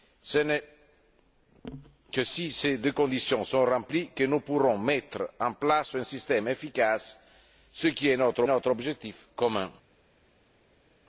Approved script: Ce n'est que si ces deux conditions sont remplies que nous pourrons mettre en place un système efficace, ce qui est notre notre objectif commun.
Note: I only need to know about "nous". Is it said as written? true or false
true